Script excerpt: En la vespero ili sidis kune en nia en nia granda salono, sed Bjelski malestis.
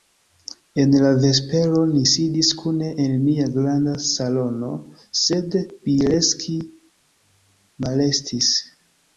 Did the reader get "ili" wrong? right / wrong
wrong